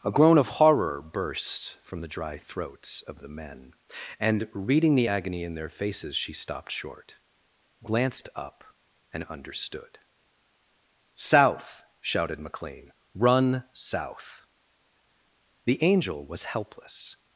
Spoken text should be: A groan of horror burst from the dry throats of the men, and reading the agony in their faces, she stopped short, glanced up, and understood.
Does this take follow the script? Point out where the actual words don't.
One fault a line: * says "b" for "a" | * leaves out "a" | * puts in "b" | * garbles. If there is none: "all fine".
* puts in "South shouted McLean Run south The Angel was helpless"